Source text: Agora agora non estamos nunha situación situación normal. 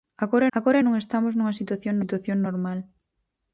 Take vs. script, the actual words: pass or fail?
pass